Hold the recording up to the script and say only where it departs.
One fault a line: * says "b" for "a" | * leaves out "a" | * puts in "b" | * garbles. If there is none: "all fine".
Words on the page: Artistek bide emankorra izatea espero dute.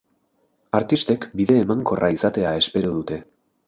all fine